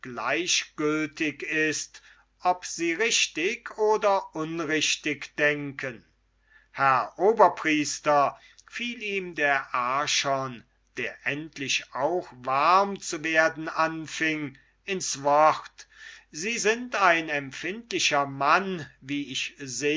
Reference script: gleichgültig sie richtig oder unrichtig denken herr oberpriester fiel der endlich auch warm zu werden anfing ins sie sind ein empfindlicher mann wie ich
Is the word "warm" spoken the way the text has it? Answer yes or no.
yes